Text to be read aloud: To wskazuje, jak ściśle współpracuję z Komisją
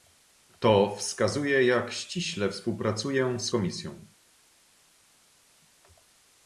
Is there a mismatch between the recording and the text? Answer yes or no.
no